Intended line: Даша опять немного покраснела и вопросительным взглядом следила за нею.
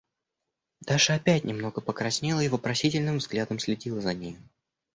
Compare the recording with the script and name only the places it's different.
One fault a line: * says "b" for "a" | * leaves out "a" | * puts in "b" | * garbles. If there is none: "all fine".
all fine